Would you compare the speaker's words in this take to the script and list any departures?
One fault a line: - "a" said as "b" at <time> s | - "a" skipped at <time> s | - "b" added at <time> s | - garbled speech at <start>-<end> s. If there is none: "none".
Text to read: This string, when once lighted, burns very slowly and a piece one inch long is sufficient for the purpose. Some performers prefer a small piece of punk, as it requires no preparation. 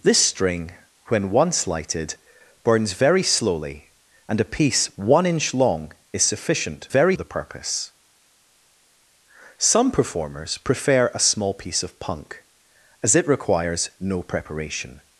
- "for" said as "very" at 6.9 s